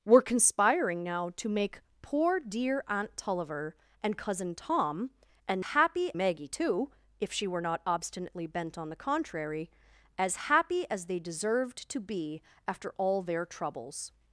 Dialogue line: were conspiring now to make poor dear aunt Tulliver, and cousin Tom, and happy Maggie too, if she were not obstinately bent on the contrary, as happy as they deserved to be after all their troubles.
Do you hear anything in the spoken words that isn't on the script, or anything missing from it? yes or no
no